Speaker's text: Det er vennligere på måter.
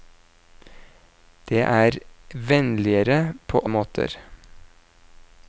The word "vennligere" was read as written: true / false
true